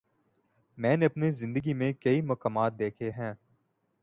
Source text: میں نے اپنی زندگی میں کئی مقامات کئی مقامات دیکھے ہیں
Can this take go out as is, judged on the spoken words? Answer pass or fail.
fail